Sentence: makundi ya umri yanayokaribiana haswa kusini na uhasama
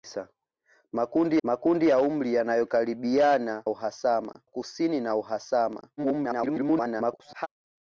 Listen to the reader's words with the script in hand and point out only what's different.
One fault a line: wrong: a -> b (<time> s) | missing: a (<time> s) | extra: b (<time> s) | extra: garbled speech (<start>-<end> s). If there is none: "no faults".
extra: makundi (1.4 s)
wrong: haswa -> uhasama (3.7 s)
extra: garbled speech (6.0-7.5 s)